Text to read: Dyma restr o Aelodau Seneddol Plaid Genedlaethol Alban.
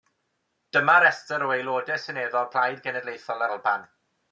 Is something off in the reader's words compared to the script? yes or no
no